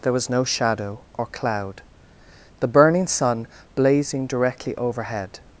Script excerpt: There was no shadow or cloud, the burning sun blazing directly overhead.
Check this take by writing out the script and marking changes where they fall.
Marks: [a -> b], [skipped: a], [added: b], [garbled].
There was no shadow or cloud, the burning sun blazing directly overhead.